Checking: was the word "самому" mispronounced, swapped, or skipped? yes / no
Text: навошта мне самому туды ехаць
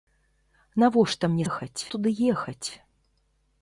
yes